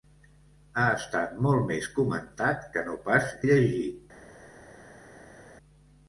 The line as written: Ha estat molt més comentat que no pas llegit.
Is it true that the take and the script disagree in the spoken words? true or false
false